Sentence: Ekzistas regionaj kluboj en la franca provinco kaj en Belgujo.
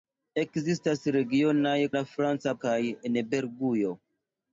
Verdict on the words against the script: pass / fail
fail